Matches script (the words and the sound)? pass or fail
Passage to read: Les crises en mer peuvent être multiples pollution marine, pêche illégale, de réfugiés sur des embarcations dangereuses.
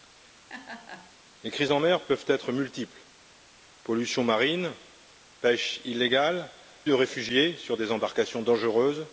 fail